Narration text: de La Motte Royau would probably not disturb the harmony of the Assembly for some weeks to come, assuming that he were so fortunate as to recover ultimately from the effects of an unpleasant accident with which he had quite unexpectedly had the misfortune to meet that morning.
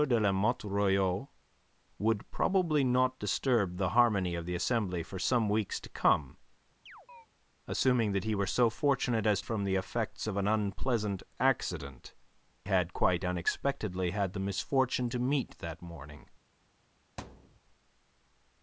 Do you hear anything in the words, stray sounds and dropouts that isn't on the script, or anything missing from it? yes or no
yes